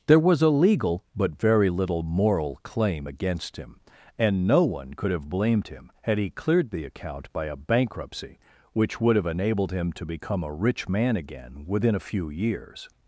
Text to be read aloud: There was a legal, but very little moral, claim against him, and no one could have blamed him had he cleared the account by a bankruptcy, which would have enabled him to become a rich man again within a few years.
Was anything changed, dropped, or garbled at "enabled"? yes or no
no